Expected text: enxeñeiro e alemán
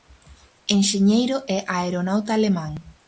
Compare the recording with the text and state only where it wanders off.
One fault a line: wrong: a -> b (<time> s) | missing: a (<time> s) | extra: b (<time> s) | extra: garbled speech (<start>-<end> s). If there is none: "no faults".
extra: aeronauta (1.8 s)